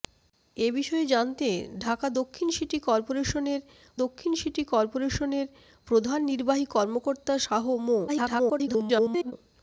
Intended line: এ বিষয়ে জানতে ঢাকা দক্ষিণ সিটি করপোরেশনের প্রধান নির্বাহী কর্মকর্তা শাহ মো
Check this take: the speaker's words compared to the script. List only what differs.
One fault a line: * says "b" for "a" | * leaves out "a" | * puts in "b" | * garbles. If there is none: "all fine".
* puts in "দক্ষিণ সিটি করপোরেশনের"
* garbles